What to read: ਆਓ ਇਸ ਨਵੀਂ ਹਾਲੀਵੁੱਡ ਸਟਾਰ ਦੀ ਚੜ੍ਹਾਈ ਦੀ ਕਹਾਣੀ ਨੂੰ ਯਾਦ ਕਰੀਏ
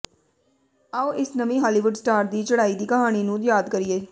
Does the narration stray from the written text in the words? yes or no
no